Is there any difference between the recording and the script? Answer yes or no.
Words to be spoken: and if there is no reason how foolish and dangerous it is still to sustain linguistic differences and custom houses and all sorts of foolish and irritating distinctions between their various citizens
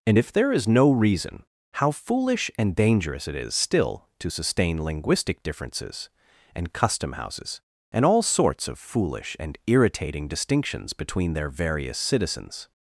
no